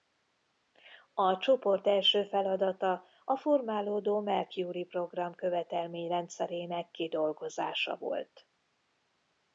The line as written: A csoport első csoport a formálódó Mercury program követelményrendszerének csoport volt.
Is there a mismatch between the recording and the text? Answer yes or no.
yes